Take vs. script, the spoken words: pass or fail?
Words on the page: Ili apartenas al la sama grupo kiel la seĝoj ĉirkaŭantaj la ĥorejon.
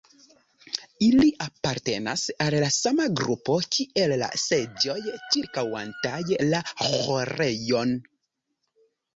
pass